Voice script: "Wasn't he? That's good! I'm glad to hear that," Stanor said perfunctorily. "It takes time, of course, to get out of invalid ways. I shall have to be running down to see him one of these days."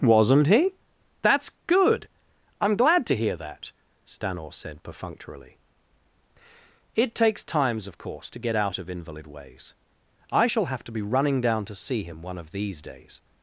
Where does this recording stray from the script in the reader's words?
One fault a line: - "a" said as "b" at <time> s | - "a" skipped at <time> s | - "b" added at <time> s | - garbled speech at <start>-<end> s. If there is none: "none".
- "time" said as "times" at 7.4 s